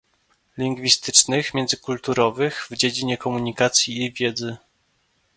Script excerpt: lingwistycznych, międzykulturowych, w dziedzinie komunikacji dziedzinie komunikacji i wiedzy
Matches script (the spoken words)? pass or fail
fail